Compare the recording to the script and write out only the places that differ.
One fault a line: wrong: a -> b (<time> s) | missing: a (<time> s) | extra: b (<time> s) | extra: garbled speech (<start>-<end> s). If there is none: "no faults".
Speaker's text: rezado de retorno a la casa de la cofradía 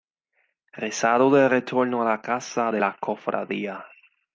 no faults